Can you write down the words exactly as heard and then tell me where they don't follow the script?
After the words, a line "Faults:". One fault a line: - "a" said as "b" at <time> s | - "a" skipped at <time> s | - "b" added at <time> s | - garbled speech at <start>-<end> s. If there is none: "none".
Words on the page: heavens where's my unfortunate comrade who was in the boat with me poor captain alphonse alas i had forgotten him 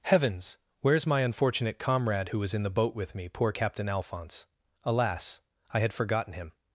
heavens where's my unfortunate comrade who was in the boat with me poor captain alphonse alas i had forgotten him
Faults:
none